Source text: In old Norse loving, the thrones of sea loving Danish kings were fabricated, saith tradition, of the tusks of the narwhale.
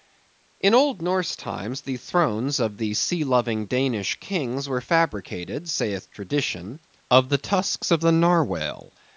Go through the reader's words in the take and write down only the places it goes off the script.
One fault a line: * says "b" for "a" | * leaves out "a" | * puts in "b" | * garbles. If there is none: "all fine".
* says "times" for "loving"
* puts in "the"